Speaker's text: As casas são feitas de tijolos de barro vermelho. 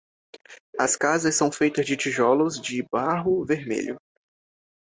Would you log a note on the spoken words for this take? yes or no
no